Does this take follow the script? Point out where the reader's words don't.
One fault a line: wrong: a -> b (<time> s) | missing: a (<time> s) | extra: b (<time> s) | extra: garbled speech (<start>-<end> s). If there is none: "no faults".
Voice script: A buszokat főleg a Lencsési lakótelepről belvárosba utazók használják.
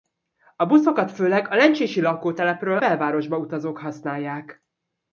no faults